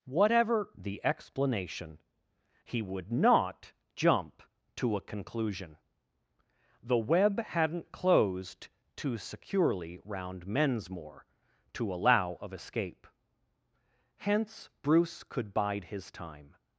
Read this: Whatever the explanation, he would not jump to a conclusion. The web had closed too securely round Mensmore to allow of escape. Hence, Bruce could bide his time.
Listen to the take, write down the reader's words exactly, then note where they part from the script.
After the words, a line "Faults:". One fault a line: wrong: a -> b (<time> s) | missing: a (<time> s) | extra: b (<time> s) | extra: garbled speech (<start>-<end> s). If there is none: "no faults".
Whatever the explanation, he would not jump to a conclusion. The web hadn't closed too securely round Mensmore to allow of escape. Hence, Bruce could bide his time.
Faults:
wrong: had -> hadn't (7.4 s)